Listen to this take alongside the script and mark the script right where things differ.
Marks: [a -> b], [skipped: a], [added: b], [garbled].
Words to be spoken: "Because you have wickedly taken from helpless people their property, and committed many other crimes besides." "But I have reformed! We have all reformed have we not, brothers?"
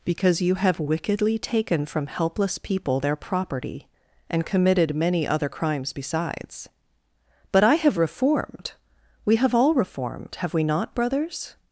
"Because you have wickedly taken from helpless people their property, and committed many other crimes besides." "But I have reformed! We have all reformed have we not, brothers?"